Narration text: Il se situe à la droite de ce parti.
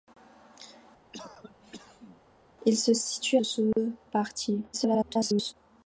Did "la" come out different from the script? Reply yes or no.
yes